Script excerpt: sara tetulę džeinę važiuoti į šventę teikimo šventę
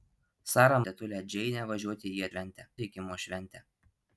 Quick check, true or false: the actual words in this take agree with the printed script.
true